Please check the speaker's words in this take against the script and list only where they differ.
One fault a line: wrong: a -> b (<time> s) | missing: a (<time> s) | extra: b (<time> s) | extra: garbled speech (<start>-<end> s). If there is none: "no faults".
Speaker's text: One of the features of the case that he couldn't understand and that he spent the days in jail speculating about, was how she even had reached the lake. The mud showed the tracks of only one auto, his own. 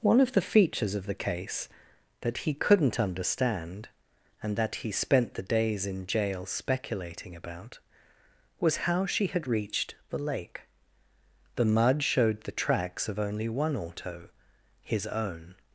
missing: even (9.3 s)